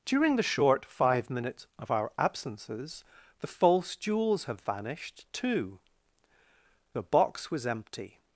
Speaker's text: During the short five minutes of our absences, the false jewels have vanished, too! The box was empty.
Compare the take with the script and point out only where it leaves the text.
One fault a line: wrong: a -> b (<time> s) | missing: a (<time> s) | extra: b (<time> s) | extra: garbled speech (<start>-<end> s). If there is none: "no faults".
no faults